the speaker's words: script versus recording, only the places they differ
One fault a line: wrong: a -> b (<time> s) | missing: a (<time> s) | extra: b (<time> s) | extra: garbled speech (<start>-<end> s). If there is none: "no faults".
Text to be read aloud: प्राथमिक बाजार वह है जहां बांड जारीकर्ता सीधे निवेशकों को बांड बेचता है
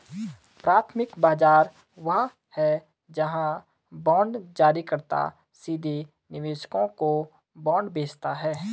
no faults